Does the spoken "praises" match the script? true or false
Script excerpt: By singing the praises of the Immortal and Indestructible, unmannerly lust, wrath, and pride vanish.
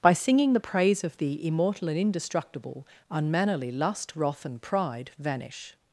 false